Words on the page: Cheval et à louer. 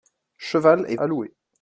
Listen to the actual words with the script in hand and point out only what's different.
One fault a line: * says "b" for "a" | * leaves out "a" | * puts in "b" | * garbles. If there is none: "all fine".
all fine